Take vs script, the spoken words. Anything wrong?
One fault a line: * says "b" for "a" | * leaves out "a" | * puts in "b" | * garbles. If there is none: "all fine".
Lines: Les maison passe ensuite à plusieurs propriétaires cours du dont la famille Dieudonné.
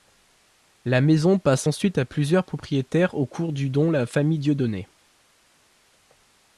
* says "La" for "Les"
* puts in "au"